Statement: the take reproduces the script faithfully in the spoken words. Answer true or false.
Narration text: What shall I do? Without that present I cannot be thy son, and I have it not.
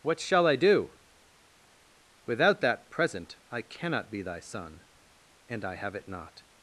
true